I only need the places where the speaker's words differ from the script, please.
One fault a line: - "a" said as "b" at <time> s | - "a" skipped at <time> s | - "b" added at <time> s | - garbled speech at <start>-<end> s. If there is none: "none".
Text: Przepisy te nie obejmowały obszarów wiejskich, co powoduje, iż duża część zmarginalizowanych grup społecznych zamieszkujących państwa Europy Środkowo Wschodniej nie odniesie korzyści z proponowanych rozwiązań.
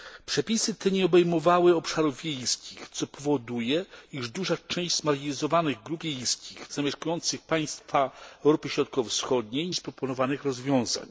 - "społecznych" said as "wiejskich" at 6.0 s
- "nie odniesie korzyści" skipped at 9.7 s